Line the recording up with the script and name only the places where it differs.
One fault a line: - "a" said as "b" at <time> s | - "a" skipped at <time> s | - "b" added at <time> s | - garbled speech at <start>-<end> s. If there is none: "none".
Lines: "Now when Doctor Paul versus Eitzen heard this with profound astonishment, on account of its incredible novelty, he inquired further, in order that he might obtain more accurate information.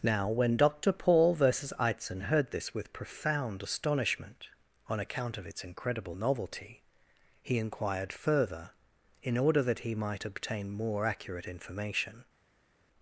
none